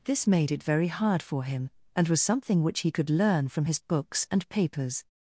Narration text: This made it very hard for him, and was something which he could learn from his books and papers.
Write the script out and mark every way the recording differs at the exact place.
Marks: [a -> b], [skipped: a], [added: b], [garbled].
This made it very hard for him, and was something which he could learn from his books and papers.